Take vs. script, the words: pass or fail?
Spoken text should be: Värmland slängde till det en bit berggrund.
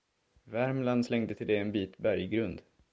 pass